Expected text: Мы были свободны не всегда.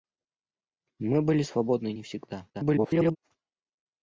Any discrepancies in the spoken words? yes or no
yes